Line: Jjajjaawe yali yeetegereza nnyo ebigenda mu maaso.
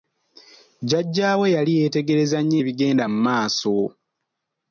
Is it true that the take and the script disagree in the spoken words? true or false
false